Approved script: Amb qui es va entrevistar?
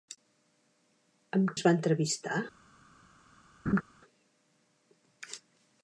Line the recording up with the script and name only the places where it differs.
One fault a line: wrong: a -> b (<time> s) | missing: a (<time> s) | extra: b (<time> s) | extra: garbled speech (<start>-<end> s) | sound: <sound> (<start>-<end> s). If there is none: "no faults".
missing: qui (1.5 s)
sound: laugh (3.7-3.8 s)